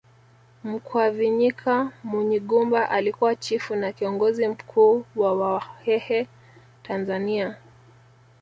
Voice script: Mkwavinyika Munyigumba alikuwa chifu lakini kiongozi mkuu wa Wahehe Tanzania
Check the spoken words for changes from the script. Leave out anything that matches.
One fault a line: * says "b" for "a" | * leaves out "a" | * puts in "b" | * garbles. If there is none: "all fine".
* says "na" for "lakini"